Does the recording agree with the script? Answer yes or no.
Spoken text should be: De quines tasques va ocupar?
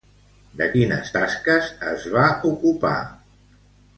no